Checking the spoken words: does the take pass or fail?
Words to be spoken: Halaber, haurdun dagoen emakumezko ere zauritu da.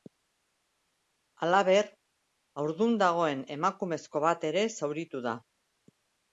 fail